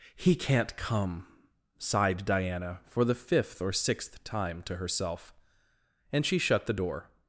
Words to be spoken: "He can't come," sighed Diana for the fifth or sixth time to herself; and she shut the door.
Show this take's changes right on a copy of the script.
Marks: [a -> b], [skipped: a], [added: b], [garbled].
"He can't come," sighed Diana for the fifth or sixth time to herself; and she shut the door.